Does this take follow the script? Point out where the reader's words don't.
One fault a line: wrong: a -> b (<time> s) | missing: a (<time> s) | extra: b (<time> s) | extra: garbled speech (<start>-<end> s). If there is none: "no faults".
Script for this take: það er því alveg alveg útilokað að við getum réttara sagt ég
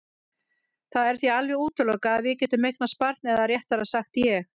missing: alveg (1.6 s)
extra: eignast barn eða (2.7 s)